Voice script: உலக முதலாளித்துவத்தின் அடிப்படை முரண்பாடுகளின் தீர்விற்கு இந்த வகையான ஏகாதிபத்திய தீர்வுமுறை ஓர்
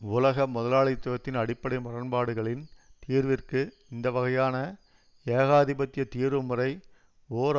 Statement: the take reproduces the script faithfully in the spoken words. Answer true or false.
true